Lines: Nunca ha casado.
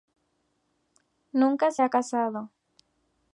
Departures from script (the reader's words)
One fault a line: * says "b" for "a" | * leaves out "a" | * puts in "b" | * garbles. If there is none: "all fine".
* puts in "se"